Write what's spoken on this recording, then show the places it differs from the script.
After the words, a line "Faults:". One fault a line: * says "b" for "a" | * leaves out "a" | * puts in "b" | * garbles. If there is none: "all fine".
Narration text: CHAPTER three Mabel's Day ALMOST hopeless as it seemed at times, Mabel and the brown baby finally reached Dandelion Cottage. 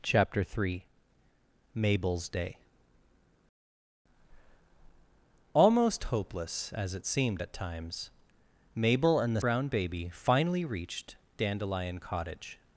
CHAPTER three Mabel's Day ALMOST hopeless as it seemed at times, Mabel and the brown baby finally reached Dandelion Cottage.
Faults:
all fine